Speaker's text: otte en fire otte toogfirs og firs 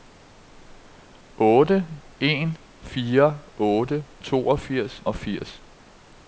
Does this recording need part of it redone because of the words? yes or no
no